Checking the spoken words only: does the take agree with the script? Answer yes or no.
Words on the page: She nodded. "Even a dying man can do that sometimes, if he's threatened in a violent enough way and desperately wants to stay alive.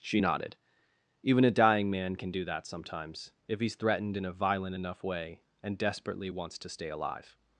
yes